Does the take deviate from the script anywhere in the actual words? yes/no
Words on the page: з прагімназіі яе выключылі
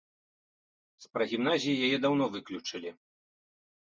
yes